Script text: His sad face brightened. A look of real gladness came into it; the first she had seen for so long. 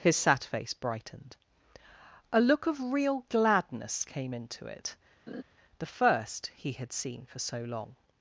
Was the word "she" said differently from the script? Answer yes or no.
yes